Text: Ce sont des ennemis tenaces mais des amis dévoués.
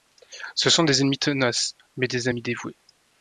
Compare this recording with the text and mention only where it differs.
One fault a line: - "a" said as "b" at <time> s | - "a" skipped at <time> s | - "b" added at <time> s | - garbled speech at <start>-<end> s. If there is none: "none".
none